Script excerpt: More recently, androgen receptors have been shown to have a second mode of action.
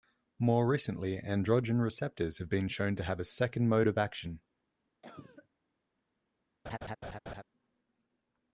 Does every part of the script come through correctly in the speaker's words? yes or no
yes